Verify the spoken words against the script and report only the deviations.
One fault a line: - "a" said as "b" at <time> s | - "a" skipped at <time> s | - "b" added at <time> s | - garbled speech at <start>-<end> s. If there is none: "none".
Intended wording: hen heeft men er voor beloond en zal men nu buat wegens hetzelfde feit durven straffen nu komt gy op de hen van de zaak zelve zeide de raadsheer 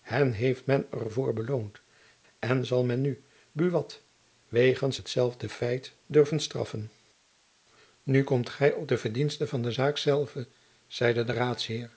- "hen" said as "verdiensten" at 9.0 s